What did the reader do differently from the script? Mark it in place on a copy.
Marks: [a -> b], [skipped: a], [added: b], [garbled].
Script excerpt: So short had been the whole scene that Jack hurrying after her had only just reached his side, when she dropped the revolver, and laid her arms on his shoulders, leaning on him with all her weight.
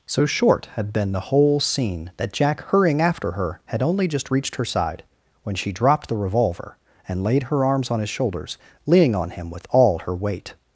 So short had been the whole scene that Jack hurrying after her had only just reached [his -> her] side, when she dropped the revolver, and laid her arms on his shoulders, leaning on him with all her weight.